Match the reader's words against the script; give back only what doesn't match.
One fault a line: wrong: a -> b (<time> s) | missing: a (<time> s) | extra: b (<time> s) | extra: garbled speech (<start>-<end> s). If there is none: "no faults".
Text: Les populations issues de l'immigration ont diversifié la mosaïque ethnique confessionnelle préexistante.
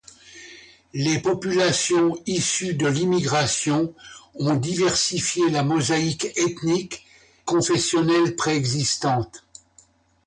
no faults